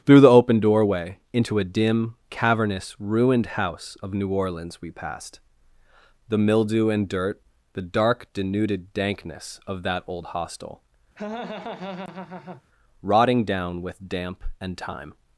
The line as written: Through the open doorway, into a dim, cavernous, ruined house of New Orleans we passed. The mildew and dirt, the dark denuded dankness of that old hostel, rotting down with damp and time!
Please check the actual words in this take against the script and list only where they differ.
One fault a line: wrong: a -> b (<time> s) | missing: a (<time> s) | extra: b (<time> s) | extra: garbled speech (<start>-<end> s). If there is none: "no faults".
no faults